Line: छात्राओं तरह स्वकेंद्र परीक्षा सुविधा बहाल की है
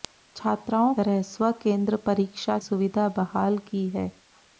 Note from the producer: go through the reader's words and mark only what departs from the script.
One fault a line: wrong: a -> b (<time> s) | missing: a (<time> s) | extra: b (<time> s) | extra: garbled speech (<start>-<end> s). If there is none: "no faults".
no faults